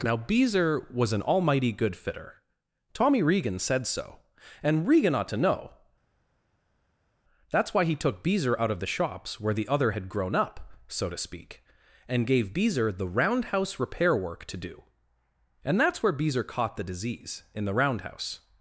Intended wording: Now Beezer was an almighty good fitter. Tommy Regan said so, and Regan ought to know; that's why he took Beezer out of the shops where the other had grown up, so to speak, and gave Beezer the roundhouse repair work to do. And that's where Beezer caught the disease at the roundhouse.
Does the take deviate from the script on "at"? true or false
true